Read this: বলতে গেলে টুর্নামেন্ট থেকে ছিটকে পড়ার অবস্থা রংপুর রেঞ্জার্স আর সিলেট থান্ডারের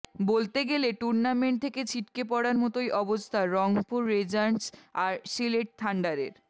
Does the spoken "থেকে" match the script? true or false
true